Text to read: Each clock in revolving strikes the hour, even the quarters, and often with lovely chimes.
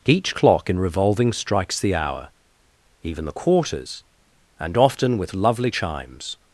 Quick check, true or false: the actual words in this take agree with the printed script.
true